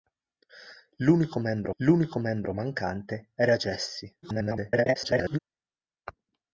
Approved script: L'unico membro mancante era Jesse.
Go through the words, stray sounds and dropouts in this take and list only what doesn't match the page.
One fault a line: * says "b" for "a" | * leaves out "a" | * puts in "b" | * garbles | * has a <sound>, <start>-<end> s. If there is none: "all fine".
* puts in "l'unico membro"
* garbles